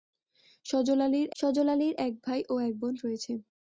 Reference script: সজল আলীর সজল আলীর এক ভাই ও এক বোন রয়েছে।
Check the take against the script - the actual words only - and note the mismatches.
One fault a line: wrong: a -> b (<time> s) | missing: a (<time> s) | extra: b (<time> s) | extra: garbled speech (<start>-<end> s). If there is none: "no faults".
no faults